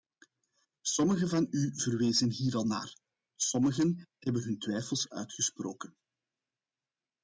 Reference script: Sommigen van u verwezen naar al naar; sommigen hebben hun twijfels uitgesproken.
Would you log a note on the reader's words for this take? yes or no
yes